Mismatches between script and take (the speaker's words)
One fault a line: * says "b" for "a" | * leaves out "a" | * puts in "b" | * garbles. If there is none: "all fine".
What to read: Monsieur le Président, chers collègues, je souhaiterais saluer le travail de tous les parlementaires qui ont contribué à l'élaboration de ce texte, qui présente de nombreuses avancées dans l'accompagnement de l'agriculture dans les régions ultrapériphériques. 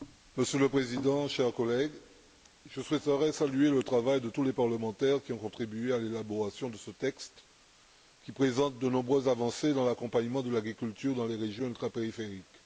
all fine